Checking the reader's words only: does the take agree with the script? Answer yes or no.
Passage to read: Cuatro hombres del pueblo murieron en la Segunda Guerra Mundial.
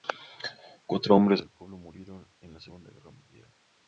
yes